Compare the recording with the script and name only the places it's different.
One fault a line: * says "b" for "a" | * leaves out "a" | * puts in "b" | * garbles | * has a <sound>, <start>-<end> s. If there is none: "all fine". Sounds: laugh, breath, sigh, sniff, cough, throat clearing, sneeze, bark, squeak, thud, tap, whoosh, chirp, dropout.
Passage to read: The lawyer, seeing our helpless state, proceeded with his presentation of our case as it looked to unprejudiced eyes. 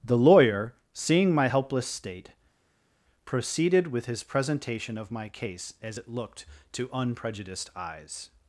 * says "my" for "our"
* says "my" for "our"